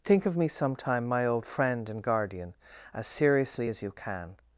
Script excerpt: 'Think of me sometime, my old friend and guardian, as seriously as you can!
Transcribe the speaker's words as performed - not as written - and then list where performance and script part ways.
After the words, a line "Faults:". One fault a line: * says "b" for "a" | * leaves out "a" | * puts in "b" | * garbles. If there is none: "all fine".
'Think of me sometime, my old friend and guardian, as seriously as you can!
Faults:
all fine